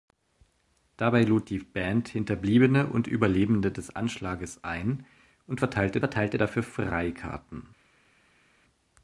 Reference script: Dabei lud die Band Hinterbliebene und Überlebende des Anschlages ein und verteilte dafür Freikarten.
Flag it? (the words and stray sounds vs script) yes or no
yes